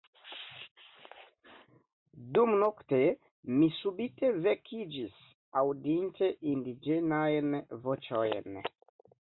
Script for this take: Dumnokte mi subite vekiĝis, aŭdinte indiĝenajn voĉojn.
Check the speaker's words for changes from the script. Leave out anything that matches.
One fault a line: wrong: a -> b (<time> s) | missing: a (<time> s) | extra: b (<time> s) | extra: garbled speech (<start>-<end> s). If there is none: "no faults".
no faults